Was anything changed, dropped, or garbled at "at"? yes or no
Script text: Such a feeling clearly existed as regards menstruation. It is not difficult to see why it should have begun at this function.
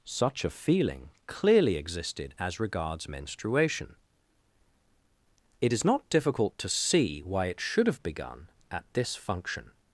no